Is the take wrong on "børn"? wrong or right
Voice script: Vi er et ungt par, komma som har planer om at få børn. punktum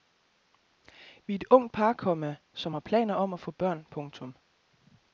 right